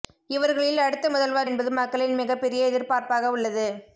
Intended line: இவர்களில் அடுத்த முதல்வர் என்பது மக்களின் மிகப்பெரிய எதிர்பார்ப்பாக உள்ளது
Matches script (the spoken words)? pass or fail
pass